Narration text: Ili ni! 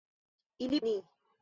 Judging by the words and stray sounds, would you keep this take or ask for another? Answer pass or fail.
pass